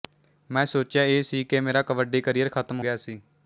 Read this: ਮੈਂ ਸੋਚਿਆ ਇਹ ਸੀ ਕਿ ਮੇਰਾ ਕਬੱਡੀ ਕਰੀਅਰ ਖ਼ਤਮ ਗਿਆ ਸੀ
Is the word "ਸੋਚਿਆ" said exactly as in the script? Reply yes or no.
yes